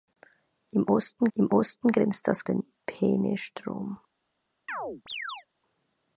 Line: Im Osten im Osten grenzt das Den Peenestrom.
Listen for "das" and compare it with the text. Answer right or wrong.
right